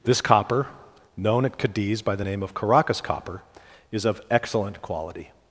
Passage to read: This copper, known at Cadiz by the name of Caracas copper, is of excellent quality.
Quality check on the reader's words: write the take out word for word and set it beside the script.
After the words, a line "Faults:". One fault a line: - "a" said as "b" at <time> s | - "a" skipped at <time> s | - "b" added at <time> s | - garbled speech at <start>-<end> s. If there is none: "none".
This copper, known at Cadiz by the name of Caracas copper, is of excellent quality.
Faults:
none